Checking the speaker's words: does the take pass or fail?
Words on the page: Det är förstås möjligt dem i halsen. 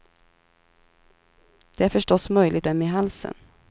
pass